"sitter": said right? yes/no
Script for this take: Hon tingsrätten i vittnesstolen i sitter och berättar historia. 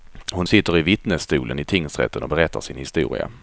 no